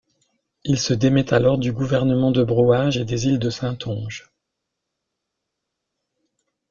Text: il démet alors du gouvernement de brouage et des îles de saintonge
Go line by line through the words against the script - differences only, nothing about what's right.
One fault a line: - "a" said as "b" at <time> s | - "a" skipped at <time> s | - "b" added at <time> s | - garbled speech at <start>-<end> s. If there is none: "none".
- "se" added at 0.8 s